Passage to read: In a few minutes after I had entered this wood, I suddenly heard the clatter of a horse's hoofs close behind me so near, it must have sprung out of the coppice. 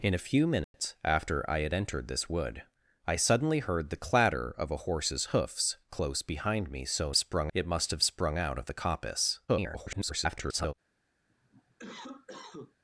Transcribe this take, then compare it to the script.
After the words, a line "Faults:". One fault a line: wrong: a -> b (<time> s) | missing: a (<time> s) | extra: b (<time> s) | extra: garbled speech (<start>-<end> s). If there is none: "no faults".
In a few minutes after I had entered this wood, I suddenly heard the clatter of a horse's hoofs close behind me so sprung, it must have sprung out of the coppice. [garbled]
Faults:
wrong: near -> sprung (7.1 s)
extra: garbled speech (9.5-10.7 s)